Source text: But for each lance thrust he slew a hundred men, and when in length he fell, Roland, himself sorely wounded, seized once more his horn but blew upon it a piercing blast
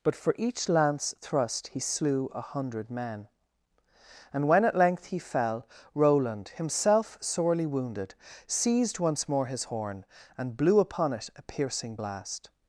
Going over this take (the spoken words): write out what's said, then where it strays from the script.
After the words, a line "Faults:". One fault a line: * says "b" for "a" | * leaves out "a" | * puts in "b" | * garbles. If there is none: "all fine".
But for each lance thrust he slew a hundred men, and when at length he fell, Roland, himself sorely wounded, seized once more his horn and blew upon it a piercing blast
Faults:
* says "at" for "in"
* says "and" for "but"